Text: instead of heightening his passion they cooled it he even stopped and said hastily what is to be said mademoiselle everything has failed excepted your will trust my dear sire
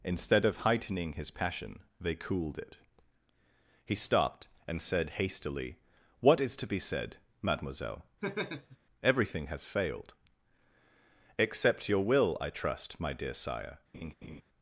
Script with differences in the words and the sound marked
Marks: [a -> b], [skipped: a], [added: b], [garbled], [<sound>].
instead of heightening his passion they cooled it he [skipped: even] stopped and said hastily what is to be said mademoiselle [laugh] everything has failed [excepted -> except] your will [added: i] trust my dear sire [laugh]